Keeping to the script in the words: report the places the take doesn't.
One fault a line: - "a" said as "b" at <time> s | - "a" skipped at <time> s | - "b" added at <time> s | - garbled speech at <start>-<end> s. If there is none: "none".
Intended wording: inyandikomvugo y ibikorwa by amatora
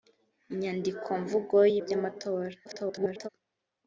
- "ibikorwa" skipped at 1.7 s
- garbled speech at 2.6-3.3 s